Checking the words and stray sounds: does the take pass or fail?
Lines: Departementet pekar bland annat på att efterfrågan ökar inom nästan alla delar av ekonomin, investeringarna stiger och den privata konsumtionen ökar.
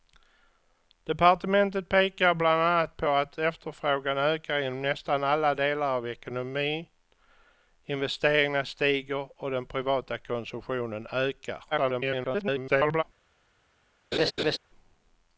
fail